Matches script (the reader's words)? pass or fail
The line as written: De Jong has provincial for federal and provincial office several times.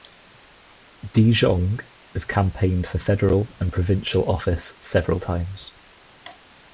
fail